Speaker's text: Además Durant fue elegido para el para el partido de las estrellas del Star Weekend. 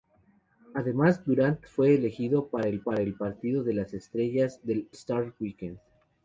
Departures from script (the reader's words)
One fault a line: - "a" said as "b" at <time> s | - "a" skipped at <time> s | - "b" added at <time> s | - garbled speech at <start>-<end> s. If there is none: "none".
none